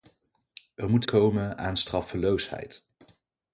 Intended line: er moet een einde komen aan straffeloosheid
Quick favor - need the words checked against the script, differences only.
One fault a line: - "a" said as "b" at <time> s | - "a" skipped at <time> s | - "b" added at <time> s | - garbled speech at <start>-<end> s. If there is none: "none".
- "een einde" skipped at 1.0 s